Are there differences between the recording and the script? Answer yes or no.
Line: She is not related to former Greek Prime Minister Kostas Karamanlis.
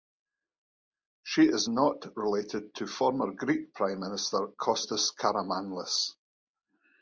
no